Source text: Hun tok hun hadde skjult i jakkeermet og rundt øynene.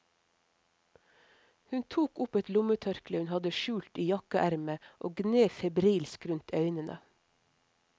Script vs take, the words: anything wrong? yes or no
yes